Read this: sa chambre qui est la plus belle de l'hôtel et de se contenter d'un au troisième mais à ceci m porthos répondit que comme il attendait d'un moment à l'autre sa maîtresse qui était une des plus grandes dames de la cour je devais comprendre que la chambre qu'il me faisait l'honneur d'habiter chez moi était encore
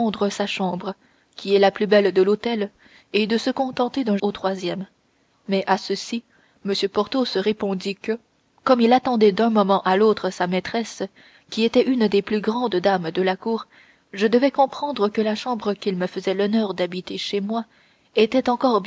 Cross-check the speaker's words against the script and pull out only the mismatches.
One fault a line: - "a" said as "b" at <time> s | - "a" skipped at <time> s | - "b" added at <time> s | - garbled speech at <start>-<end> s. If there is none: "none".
none